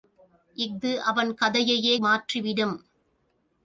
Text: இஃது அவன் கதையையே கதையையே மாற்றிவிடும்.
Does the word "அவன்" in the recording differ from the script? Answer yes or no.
no